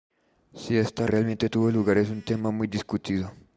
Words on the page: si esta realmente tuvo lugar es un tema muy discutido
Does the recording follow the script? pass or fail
pass